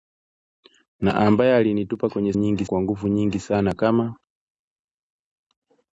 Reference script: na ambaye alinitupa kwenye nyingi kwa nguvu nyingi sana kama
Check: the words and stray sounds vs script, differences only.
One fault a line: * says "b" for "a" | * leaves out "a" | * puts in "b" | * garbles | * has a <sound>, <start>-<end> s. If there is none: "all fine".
all fine